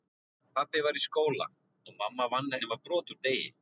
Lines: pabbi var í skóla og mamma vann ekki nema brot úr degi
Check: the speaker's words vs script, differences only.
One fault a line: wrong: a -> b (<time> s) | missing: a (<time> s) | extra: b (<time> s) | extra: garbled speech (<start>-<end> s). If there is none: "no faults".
missing: ekki (2.6 s)